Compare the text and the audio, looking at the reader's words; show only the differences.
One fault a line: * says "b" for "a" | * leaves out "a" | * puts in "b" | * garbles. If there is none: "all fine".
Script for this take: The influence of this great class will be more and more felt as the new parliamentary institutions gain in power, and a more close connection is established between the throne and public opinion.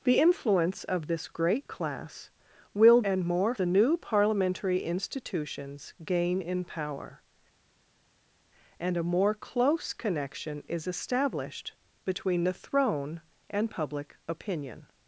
* leaves out "be more"
* leaves out "felt as"